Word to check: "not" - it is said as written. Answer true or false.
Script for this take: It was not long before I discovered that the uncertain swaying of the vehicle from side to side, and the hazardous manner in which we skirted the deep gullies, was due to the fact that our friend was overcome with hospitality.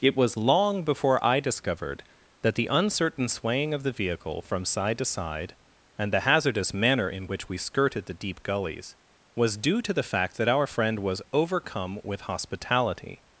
false